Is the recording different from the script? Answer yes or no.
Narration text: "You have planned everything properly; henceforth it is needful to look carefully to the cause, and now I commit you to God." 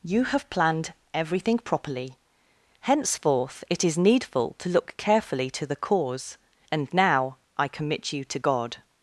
no